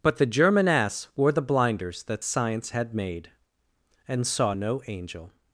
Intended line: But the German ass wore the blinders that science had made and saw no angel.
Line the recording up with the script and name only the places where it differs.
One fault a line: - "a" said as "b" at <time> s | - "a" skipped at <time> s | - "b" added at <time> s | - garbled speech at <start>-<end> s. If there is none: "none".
none